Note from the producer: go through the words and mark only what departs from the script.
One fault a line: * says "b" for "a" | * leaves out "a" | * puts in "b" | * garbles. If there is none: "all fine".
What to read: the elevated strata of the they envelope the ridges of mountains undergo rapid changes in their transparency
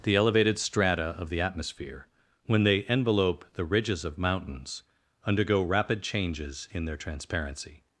* puts in "atmosphere when"